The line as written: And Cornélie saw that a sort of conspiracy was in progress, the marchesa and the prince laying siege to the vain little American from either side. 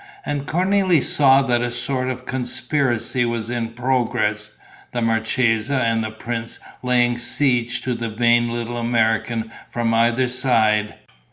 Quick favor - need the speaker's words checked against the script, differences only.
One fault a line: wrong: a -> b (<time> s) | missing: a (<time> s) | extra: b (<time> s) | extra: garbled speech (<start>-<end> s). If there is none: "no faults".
no faults